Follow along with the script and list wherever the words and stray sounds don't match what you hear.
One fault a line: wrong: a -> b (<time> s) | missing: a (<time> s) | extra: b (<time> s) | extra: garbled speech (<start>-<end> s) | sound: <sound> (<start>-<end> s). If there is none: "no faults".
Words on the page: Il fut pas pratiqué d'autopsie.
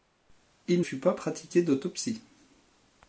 no faults